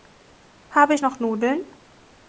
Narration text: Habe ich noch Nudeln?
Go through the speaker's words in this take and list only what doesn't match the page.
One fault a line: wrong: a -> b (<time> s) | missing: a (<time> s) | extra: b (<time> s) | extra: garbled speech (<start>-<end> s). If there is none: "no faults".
no faults